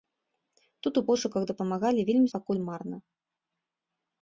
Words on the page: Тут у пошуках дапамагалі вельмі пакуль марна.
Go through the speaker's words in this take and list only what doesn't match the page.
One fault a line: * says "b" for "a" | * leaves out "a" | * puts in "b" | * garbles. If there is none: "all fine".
all fine